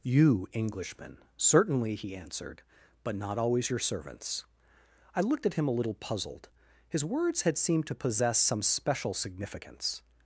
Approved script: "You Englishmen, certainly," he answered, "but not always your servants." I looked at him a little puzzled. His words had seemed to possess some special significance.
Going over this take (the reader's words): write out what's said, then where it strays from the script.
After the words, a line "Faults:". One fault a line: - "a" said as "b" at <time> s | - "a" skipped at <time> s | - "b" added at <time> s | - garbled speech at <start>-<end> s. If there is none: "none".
"You Englishmen, certainly," he answered, "but not always your servants." I looked at him a little puzzled. His words had seemed to possess some special significance.
Faults:
none